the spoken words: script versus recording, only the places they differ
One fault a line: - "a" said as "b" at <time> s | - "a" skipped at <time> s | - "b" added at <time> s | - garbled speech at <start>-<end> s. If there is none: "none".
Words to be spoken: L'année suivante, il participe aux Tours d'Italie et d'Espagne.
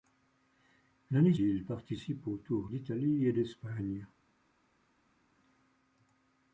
- "suivante" skipped at 1.4 s